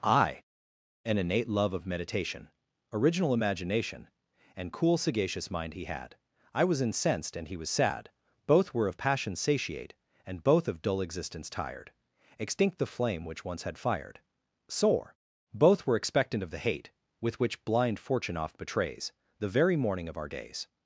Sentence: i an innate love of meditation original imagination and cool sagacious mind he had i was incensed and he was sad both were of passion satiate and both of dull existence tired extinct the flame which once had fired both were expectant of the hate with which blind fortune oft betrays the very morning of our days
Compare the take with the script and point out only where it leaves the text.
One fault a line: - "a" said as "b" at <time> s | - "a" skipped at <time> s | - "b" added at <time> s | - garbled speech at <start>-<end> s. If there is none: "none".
- "sore" added at 14.7 s